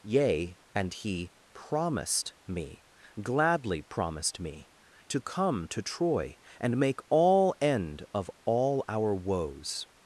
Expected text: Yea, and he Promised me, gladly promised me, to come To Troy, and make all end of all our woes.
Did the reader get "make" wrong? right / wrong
right